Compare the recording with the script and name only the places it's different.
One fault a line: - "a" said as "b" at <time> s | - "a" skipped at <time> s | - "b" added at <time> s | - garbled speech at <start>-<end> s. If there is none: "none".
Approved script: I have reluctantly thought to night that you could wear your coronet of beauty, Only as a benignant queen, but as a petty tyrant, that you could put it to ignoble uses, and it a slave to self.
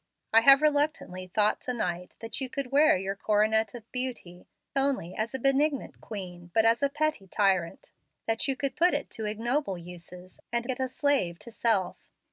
none